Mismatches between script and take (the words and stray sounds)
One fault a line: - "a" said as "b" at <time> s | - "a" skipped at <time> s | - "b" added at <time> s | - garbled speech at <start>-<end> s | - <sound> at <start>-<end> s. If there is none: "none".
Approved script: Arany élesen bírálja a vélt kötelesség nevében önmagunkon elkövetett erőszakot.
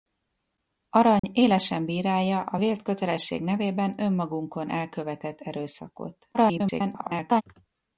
- dropout at 1.2-1.2 s
- garbled speech at 6.3-7.4 s